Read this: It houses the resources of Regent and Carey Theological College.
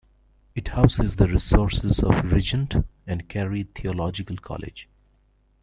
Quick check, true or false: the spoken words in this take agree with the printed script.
true